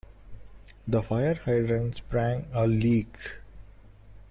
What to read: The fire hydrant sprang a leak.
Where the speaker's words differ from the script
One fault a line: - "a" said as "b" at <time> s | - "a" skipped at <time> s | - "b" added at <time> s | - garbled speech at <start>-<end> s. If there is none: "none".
none